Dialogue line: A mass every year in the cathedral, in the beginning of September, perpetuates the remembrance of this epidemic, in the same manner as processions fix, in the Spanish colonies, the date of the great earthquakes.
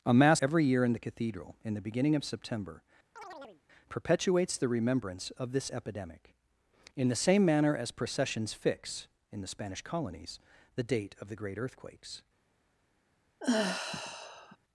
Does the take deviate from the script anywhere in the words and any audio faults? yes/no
yes